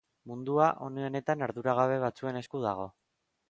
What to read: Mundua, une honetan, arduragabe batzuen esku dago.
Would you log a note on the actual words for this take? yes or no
no